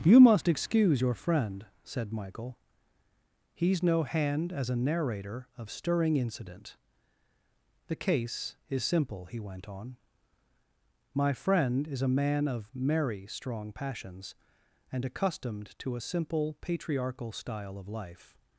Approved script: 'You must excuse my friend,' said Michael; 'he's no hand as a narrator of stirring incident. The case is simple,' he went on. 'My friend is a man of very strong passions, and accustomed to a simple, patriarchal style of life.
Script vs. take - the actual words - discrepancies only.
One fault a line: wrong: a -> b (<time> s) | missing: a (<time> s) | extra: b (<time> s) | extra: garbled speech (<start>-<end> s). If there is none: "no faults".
wrong: my -> your (1.0 s)
wrong: very -> merry (12.7 s)